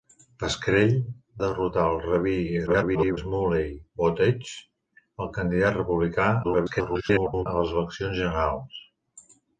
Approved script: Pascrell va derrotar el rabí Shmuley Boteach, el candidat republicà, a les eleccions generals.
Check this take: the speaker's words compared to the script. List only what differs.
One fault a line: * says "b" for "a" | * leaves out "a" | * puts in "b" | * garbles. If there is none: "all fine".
* leaves out "va"
* garbles
* garbles